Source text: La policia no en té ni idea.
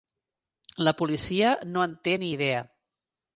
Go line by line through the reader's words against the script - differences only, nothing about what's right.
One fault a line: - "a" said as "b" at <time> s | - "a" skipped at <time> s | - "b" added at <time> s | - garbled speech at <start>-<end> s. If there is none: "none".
none